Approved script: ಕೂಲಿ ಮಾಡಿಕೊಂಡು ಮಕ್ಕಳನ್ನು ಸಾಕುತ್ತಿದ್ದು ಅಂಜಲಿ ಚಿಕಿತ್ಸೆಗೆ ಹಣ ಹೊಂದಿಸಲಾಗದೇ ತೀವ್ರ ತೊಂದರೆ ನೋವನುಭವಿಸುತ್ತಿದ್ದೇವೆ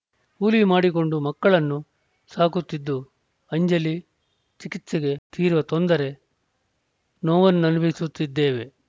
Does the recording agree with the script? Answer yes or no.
no